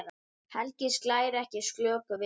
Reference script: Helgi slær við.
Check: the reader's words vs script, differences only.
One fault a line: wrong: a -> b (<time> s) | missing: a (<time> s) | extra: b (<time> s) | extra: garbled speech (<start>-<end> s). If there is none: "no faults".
extra: ekki slöku (1.4 s)